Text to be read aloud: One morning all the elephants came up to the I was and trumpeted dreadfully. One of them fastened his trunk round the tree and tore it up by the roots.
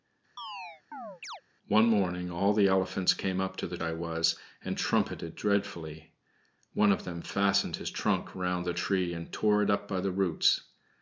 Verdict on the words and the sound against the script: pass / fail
fail